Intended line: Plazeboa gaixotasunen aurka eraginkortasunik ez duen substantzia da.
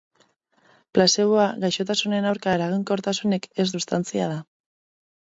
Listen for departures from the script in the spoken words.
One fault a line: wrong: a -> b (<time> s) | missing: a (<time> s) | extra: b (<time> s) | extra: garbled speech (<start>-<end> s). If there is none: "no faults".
missing: duen (3.7 s)